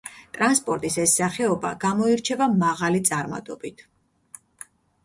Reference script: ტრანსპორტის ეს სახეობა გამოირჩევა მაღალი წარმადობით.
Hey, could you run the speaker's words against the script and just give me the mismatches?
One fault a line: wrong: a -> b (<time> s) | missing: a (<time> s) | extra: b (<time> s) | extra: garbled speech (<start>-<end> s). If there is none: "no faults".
no faults